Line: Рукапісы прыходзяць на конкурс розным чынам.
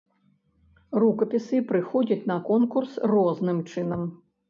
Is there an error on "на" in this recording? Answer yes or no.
no